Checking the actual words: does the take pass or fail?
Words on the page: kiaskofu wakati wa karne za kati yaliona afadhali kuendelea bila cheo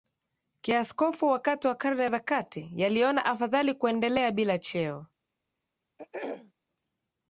pass